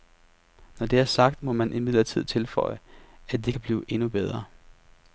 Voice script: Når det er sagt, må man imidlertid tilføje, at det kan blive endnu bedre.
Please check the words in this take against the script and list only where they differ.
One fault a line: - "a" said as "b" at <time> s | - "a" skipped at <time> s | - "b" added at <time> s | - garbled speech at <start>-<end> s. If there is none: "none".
none